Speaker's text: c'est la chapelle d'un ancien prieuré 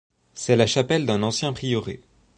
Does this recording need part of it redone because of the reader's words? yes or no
no